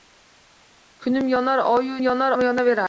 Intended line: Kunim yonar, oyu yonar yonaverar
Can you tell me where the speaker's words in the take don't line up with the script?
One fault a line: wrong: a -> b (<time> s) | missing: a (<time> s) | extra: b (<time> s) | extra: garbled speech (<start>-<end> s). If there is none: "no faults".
no faults